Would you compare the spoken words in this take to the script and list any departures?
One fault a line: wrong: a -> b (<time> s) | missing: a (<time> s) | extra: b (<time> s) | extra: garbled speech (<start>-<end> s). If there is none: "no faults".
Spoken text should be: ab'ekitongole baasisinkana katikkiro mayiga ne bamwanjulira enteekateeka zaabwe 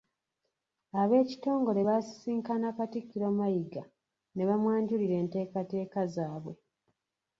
no faults